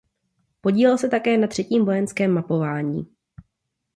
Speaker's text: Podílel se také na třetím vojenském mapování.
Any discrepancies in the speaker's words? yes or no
no